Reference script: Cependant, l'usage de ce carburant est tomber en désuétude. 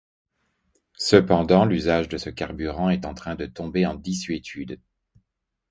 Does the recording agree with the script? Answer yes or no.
no